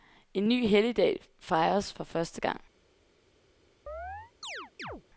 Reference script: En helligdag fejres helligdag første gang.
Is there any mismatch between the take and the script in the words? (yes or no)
yes